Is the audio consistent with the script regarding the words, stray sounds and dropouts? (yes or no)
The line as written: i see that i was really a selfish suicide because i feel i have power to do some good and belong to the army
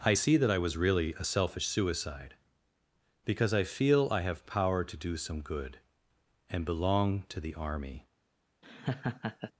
no